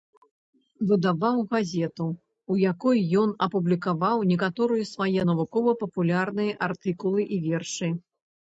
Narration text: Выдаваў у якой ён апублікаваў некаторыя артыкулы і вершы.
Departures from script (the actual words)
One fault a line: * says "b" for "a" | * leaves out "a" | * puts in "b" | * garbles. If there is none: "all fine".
* puts in "газету"
* puts in "свае навукова папулярныя"